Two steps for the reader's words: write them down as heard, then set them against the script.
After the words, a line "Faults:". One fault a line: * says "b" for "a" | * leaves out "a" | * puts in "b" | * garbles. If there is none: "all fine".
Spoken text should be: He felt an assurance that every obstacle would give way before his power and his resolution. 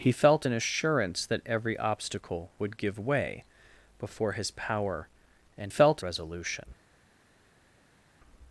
He felt an assurance that every obstacle would give way before his power and felt resolution.
Faults:
* says "felt" for "his"